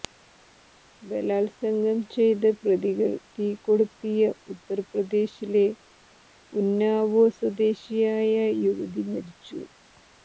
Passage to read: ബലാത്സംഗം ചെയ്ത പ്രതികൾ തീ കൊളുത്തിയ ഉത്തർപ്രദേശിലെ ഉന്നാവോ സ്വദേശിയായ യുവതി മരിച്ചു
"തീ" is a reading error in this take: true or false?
false